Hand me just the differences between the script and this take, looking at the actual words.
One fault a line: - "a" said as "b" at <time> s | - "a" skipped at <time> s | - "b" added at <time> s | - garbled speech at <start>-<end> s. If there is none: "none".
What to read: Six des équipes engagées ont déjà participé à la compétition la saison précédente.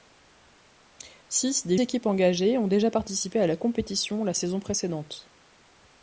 none